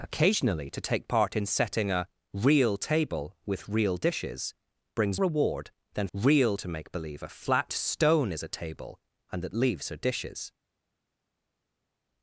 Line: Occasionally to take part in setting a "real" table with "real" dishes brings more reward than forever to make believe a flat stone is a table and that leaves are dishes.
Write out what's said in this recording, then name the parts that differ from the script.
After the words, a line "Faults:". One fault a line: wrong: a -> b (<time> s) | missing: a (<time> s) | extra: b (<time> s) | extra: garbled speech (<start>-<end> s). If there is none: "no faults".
Occasionally to take part in setting a "real" table with "real" dishes brings reward than real to make believe a flat stone is a table and that leaves are dishes.
Faults:
missing: more (5.2 s)
wrong: forever -> real (6.1 s)